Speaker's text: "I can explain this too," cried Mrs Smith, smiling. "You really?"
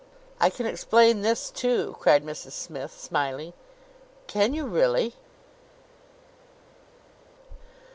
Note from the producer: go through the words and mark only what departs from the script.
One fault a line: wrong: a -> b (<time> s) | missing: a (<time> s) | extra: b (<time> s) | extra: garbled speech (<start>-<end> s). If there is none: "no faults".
extra: Can (4.3 s)